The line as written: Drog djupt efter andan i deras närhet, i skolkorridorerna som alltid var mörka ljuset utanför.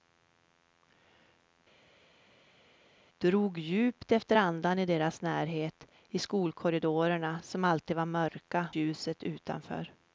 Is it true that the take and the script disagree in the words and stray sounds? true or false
false